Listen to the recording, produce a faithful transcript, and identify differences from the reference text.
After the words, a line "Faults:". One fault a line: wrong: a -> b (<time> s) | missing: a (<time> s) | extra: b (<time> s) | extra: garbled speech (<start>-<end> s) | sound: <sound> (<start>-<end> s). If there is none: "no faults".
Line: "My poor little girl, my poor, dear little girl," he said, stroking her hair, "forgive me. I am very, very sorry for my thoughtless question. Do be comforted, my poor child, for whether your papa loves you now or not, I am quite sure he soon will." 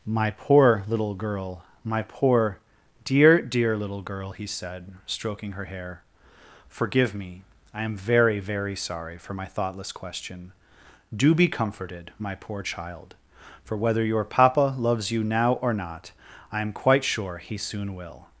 "My poor little girl, my poor, dear dear little girl," he said, stroking her hair, "forgive me. I am very, very sorry for my thoughtless question. Do be comforted, my poor child, for whether your papa loves you now or not, I am quite sure he soon will."
Faults:
extra: dear (3.4 s)